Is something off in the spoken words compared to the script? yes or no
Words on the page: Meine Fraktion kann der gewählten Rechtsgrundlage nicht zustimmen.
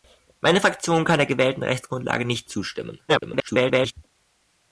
yes